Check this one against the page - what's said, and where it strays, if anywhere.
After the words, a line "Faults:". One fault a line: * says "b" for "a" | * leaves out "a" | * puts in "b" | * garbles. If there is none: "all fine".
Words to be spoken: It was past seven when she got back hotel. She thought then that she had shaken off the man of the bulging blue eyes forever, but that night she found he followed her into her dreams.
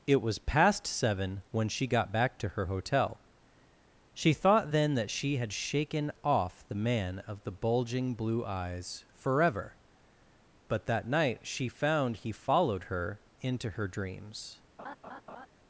It was past seven when she got back to her hotel. She thought then that she had shaken off the man of the bulging blue eyes forever, but that night she found he followed her into her dreams.
Faults:
* puts in "to her"